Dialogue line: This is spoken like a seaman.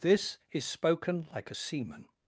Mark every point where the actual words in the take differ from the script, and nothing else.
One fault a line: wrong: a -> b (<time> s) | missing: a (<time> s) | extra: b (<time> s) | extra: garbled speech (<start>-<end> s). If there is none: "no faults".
no faults